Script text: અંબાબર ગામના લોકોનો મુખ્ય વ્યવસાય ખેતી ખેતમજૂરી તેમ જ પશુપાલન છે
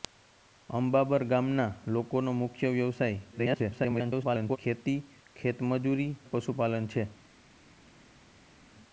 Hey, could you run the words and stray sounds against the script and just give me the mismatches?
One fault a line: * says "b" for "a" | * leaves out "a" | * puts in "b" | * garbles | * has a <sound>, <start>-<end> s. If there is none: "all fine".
* garbles
* leaves out "તેમ"